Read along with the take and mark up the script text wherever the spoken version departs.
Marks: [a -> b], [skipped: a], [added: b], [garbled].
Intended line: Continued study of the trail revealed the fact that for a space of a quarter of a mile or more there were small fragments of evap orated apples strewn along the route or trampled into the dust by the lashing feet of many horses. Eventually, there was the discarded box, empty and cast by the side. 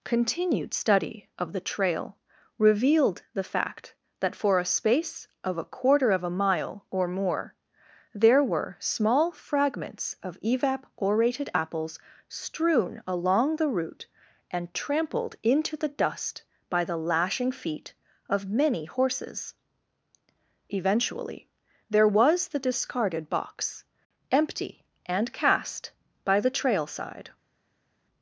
Continued study of the trail revealed the fact that for a space of a quarter of a mile or more there were small fragments of evap orated apples strewn along the route [or -> and] trampled into the dust by the lashing feet of many horses. Eventually, there was the discarded box, empty and cast by the [added: trail] side.